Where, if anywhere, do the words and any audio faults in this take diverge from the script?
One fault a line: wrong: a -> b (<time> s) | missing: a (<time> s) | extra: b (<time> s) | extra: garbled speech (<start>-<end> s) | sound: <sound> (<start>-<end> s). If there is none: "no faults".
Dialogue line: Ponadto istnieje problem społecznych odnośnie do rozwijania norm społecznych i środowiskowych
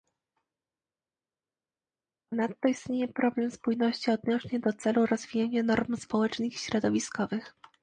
wrong: społecznych -> spójności (3.5 s)
extra: celu (4.7 s)